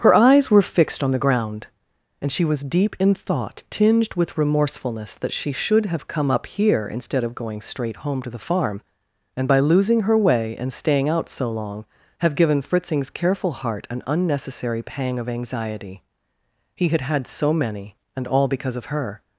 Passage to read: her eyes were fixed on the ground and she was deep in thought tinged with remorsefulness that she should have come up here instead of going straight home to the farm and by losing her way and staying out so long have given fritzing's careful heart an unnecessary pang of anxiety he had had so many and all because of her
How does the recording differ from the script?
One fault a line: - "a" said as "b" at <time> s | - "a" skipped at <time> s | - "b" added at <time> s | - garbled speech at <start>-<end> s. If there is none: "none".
none